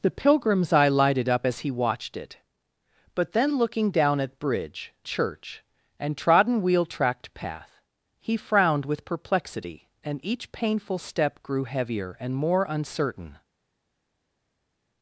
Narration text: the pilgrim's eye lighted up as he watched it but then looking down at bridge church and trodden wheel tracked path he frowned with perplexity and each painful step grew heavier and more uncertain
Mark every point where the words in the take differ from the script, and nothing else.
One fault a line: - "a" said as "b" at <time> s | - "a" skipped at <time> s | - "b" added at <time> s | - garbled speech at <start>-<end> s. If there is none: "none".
none